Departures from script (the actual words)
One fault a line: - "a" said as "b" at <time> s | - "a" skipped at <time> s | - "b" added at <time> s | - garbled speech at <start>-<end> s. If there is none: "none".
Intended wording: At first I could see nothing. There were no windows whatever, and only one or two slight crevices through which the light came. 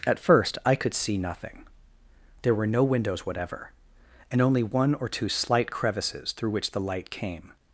none